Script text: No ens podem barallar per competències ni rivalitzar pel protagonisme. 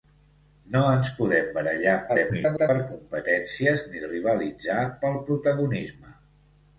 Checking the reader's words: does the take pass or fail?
fail